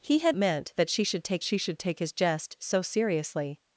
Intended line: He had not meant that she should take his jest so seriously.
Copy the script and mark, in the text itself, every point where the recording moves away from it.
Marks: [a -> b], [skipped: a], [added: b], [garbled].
He had [skipped: not] meant that she should take [added: she should take] his jest so seriously.